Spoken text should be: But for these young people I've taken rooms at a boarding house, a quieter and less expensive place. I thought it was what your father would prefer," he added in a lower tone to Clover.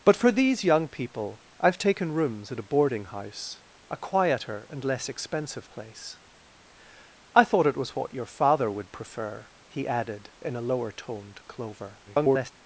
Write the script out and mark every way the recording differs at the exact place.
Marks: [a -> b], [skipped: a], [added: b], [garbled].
But for these young people I've taken rooms at a boarding house, a quieter and less expensive place. I thought it was what your father would prefer," he added in a lower tone to Clover. [garbled]